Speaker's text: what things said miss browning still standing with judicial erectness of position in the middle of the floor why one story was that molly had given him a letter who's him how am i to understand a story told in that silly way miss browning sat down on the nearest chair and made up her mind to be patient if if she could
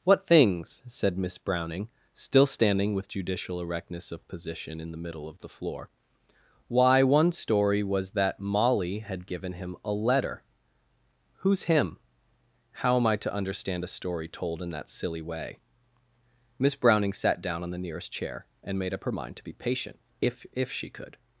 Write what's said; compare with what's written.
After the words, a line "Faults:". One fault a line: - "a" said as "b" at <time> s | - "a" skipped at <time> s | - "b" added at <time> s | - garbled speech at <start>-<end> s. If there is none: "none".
what things said miss browning still standing with judicial erectness of position in the middle of the floor why one story was that molly had given him a letter who's him how am i to understand a story told in that silly way miss browning sat down on the nearest chair and made up her mind to be patient if if she could
Faults:
none